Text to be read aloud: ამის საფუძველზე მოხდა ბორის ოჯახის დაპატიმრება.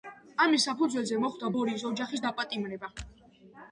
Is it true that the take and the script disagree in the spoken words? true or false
false